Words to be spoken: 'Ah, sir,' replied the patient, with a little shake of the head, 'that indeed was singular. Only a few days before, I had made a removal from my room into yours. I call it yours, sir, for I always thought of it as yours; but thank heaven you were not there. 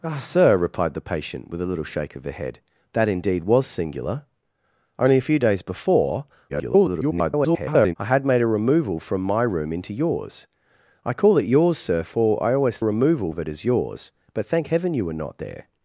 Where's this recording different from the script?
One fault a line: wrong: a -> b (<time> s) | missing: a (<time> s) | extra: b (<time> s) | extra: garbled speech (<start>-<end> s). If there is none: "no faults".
extra: garbled speech (6.5-7.9 s)
wrong: thought -> removal (12.8 s)